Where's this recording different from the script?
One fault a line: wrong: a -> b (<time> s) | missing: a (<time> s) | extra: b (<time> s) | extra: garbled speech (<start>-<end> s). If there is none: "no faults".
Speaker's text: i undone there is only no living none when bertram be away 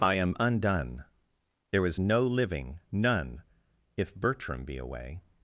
extra: am (0.1 s)
missing: only (2.0 s)
wrong: when -> if (4.0 s)